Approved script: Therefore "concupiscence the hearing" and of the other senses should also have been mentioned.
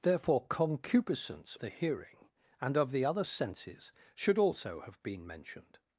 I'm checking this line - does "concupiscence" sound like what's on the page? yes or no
yes